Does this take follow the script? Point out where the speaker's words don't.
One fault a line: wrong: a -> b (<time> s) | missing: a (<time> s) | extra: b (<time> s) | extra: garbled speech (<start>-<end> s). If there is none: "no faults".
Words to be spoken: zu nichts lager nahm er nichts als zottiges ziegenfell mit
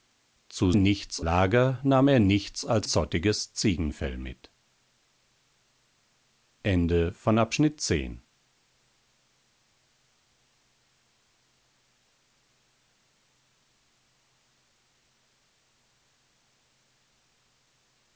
no faults